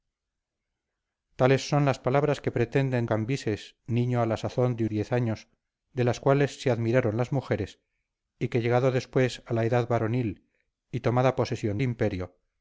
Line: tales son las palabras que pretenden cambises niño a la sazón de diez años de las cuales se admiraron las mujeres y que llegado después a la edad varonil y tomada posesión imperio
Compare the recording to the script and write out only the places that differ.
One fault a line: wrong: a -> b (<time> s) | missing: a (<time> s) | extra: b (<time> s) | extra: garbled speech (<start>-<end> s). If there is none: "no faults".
no faults